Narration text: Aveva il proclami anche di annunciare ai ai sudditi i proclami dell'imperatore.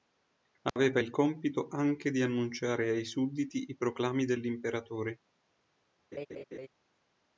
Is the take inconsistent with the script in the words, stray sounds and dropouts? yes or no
yes